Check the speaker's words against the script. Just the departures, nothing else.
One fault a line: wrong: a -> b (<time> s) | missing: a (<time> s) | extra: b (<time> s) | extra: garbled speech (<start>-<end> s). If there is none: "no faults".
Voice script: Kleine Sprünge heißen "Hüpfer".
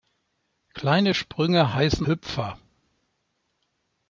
no faults